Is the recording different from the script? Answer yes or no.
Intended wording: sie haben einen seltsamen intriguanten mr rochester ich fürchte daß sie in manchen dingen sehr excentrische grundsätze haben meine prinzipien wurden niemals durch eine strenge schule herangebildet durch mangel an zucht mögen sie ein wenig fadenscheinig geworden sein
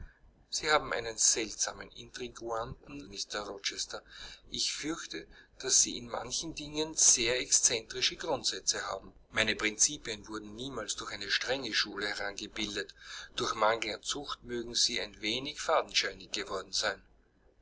no